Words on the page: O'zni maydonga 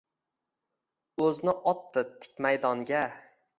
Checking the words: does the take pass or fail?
fail